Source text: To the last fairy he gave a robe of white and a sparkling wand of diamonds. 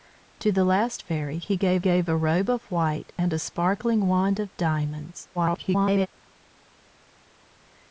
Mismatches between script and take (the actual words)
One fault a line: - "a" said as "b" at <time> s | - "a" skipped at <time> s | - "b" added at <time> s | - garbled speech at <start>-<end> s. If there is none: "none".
- "gave" added at 1.8 s
- garbled speech at 5.3-6.1 s